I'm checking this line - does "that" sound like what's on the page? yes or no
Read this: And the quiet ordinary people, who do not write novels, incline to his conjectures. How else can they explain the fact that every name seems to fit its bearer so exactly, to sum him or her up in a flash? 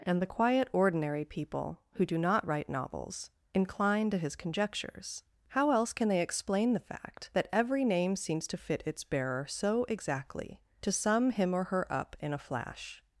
yes